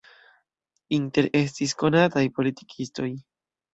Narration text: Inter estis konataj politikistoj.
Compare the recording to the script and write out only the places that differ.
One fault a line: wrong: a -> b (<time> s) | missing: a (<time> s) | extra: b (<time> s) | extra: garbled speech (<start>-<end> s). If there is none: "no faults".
no faults